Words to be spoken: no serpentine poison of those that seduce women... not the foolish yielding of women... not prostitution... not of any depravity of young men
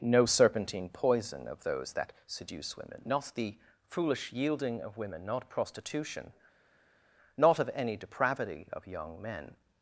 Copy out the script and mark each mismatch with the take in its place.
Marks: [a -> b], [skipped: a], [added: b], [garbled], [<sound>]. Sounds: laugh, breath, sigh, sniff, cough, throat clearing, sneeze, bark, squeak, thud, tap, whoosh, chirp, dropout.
no serpentine poison of those that seduce women... not the foolish yielding of women... not prostitution... not of any depravity of young men